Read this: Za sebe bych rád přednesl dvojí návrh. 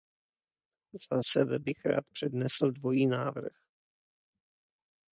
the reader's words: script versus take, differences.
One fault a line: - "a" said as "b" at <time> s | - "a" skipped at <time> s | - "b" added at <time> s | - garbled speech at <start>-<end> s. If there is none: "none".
none